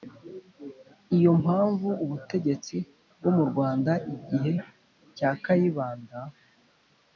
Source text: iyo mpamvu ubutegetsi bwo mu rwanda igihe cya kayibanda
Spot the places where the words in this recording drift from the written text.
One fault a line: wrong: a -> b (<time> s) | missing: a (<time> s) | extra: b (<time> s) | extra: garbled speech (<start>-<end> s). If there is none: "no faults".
no faults